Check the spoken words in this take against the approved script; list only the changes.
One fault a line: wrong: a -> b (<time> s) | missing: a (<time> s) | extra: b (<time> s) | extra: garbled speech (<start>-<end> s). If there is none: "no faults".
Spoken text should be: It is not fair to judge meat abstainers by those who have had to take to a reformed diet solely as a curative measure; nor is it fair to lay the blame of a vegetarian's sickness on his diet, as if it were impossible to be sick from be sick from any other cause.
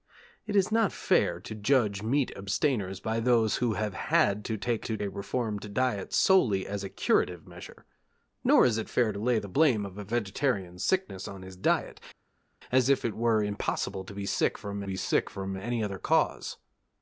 no faults